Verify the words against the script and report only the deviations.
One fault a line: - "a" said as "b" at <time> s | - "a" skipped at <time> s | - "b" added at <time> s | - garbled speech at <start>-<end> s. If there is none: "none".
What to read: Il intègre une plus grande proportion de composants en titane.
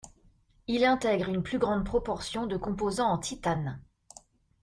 none